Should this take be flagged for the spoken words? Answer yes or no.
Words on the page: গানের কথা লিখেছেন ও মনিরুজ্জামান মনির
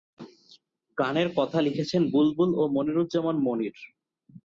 yes